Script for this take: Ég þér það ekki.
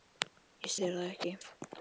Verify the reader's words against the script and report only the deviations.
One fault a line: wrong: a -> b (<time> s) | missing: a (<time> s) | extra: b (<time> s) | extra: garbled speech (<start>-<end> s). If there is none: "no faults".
no faults